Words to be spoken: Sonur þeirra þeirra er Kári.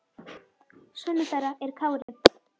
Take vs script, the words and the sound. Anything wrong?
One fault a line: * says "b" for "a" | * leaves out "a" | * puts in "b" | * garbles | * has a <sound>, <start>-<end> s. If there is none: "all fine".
* leaves out "þeirra"
* has a dropout, 2.0-2.1 s